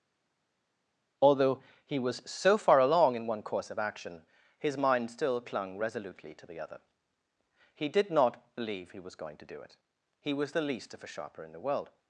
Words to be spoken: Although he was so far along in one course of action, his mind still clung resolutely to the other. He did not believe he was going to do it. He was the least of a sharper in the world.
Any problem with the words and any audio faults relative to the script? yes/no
no